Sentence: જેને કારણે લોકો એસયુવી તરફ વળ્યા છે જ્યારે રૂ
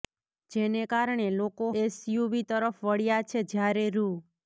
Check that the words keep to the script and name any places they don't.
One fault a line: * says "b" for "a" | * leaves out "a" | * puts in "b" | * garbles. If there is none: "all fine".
all fine